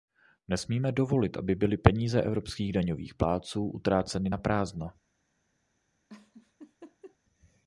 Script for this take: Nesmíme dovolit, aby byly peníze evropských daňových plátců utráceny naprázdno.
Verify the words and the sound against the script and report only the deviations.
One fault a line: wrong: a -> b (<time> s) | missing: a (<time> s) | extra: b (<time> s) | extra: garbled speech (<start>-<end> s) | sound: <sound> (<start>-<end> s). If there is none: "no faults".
sound: laugh (6.1-7.2 s)